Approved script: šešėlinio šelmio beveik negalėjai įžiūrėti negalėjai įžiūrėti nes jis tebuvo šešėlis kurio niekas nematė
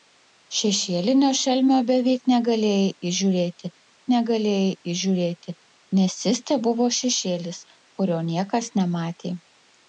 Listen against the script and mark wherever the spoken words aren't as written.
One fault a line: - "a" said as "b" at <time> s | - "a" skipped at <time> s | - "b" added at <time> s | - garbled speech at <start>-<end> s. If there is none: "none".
none